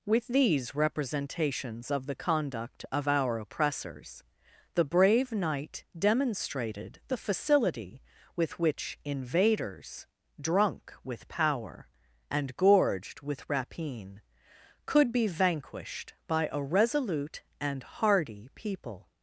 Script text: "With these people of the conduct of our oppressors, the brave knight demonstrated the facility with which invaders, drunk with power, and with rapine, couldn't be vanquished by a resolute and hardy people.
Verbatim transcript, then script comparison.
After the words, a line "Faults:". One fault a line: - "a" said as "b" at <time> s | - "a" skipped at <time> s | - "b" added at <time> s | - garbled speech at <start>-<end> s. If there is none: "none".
"With these representations of the conduct of our oppressors, the brave knight demonstrated the facility with which invaders, drunk with power, and gorged with rapine, could be vanquished by a resolute and hardy people.
Faults:
- "people" said as "representations" at 0.7 s
- "gorged" added at 12.6 s
- "couldn't" said as "could" at 14.9 s